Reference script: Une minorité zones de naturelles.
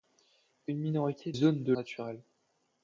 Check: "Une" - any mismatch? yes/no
no